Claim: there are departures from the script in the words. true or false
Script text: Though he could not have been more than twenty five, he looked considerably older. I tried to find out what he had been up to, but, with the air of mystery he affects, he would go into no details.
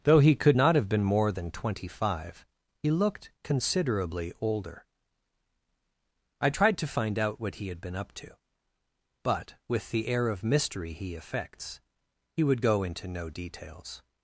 false